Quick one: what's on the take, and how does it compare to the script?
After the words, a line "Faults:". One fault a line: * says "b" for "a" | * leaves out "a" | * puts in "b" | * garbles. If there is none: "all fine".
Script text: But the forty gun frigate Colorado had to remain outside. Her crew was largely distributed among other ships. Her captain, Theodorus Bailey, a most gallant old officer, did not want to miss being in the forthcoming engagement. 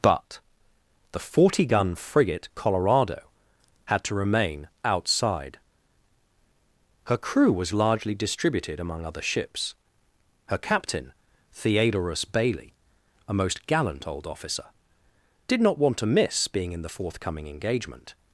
But the forty gun frigate Colorado had to remain outside. Her crew was largely distributed among other ships. Her captain, Theodorus Bailey, a most gallant old officer, did not want to miss being in the forthcoming engagement.
Faults:
all fine